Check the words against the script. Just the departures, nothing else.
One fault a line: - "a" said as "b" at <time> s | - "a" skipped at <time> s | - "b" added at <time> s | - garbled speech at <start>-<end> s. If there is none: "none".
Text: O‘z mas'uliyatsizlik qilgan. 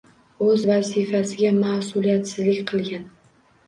- "vazifasiga" added at 0.7 s